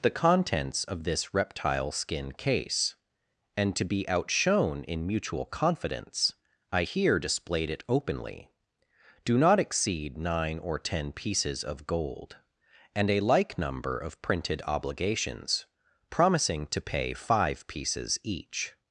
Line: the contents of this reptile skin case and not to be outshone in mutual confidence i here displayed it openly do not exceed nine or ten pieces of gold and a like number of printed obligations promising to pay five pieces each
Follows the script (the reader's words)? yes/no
no